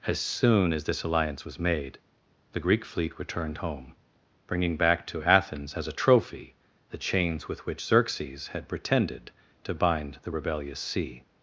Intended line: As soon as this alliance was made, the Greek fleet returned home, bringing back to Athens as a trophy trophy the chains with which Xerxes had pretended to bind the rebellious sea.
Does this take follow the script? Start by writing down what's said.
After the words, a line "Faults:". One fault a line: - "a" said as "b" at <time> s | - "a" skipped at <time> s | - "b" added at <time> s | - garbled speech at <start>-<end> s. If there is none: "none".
As soon as this alliance was made, the Greek fleet returned home, bringing back to Athens as a trophy the chains with which Xerxes had pretended to bind the rebellious sea.
Faults:
- "trophy" skipped at 6.6 s